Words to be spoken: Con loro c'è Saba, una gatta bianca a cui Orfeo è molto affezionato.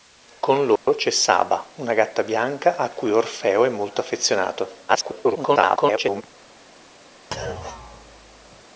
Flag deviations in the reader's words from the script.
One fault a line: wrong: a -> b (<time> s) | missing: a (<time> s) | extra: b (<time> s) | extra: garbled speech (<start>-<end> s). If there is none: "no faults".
extra: garbled speech (4.9-6.2 s)